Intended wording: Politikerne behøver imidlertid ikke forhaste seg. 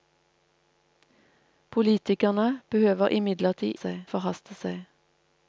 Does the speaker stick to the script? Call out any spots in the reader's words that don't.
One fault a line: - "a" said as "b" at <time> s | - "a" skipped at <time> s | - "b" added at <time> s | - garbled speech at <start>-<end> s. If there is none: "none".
- "ikke" said as "seg" at 3.7 s